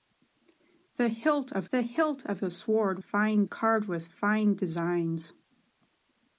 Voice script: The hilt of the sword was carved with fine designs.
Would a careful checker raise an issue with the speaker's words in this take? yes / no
yes